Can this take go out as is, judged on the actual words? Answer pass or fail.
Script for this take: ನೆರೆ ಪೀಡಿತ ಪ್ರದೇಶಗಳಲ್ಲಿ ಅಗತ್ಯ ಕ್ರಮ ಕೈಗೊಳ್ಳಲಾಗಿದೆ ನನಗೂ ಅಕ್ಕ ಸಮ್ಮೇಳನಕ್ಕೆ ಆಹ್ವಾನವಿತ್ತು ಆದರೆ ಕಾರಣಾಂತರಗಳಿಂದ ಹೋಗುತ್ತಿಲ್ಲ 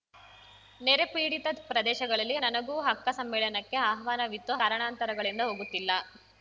fail